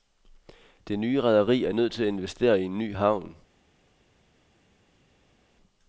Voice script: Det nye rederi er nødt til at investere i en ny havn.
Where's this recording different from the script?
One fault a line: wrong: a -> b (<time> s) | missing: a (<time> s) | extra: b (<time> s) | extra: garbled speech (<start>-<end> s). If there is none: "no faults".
no faults